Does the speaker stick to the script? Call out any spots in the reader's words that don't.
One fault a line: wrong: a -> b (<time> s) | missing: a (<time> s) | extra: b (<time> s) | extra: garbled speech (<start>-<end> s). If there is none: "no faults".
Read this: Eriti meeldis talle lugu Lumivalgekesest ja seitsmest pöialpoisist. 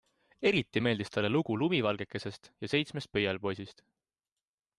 no faults